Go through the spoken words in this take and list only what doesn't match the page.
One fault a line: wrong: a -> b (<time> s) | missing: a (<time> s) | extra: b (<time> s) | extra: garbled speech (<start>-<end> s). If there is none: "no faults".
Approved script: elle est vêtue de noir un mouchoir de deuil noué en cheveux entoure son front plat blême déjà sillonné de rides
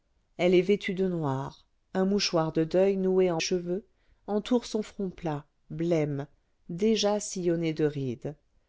no faults